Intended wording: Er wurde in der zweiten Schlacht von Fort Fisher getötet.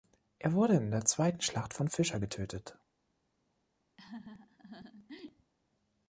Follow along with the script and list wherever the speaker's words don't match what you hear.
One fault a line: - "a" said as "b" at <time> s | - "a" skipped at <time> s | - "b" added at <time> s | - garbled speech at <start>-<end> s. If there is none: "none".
- "Fort" skipped at 1.9 s